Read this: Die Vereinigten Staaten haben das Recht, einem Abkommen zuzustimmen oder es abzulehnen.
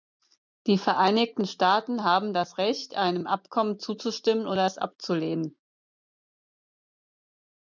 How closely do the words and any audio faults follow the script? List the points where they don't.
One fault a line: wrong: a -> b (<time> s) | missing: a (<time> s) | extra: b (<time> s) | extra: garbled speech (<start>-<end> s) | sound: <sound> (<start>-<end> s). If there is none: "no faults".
no faults